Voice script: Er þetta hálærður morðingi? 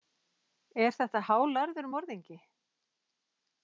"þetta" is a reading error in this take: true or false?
false